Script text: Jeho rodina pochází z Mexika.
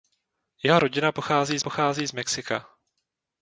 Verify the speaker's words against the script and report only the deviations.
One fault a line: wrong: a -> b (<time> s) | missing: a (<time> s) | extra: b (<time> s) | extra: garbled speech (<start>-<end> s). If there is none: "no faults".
extra: pochází (1.6 s)